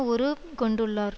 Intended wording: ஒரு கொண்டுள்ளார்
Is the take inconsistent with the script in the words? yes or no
no